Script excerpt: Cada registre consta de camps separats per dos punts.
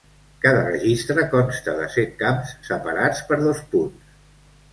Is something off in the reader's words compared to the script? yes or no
yes